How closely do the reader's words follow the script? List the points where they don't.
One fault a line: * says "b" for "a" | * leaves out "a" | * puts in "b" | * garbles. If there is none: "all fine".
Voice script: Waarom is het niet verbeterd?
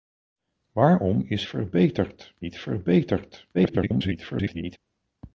* says "verbeterd" for "het"
* garbles